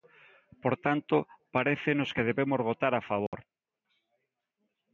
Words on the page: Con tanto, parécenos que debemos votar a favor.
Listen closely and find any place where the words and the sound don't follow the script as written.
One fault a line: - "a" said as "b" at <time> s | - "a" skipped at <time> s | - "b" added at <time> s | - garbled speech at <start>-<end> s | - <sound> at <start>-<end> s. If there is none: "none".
- "Con" said as "Por" at 0.6 s
- dropout at 3.3-3.3 s